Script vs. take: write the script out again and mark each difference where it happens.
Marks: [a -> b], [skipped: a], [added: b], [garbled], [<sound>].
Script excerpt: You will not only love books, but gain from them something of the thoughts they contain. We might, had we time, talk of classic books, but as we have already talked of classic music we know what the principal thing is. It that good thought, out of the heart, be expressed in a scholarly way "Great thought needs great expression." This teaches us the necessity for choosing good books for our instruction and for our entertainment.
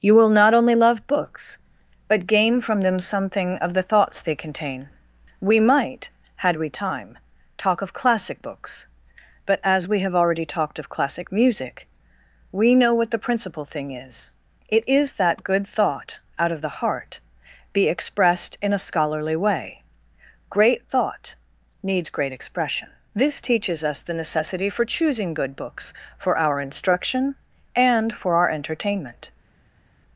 You will not only love books, but gain from them something of the thoughts they contain. We might, had we time, talk of classic books, but as we have already talked of classic music we know what the principal thing is. It [added: is] that good thought, out of the heart, be expressed in a scholarly way "Great thought needs great expression." This teaches us the necessity for choosing good books for our instruction and for our entertainment.